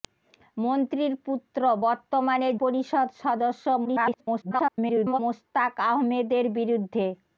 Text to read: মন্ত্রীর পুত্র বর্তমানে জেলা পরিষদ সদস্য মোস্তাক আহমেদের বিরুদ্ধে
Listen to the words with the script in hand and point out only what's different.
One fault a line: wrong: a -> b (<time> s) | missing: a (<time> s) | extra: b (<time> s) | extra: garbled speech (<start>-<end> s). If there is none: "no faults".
missing: জেলা (2.5 s)
extra: garbled speech (3.8-5.2 s)